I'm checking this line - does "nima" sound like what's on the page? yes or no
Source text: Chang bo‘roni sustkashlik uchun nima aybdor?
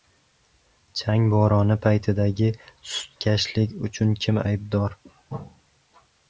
no